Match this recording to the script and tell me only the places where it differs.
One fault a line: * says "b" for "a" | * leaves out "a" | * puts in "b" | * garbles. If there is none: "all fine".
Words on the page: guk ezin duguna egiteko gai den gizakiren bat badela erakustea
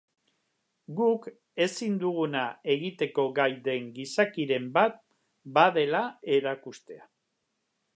all fine